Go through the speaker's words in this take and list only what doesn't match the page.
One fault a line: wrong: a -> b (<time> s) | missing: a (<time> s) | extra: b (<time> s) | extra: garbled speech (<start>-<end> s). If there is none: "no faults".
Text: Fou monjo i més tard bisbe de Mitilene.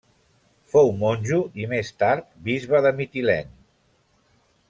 no faults